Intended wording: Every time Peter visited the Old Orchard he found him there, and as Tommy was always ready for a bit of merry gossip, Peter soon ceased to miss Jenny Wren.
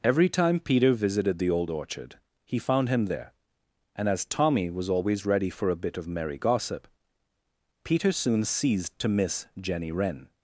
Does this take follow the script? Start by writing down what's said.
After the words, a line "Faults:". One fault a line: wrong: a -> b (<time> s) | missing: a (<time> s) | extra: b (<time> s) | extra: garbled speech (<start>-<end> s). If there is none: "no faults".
Every time Peter visited the Old Orchard he found him there, and as Tommy was always ready for a bit of merry gossip, Peter soon ceased to miss Jenny Wren.
Faults:
no faults